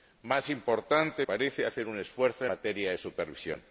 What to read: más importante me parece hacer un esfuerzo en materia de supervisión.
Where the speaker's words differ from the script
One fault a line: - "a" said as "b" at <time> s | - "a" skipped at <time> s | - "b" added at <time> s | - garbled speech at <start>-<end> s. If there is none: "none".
- "me" skipped at 1.2 s
- "en" skipped at 2.5 s